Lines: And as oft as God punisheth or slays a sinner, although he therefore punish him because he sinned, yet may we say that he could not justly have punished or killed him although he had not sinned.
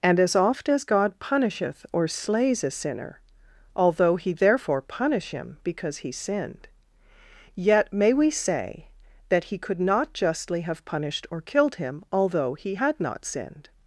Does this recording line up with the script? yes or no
yes